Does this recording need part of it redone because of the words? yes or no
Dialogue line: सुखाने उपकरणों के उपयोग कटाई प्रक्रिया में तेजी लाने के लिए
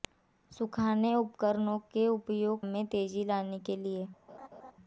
yes